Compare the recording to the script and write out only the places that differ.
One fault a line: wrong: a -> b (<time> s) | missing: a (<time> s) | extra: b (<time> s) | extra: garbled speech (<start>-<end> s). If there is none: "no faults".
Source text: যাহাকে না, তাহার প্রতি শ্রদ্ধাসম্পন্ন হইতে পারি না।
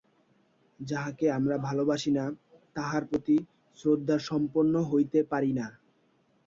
extra: আমরা ভালবাসি (1.4 s)